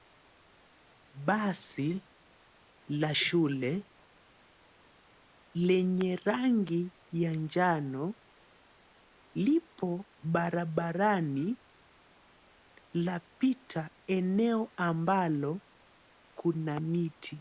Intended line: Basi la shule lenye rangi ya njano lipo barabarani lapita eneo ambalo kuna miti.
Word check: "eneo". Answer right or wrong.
right